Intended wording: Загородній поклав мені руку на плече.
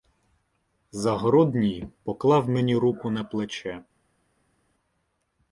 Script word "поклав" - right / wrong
right